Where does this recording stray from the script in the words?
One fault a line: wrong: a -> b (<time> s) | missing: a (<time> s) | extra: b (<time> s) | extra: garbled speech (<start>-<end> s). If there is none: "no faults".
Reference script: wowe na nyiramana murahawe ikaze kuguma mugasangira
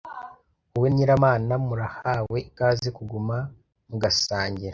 missing: na (0.9 s)